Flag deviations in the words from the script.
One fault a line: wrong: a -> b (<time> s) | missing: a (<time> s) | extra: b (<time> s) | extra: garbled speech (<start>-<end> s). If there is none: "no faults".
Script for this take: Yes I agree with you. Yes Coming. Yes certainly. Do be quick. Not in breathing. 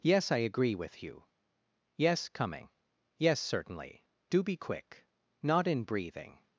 no faults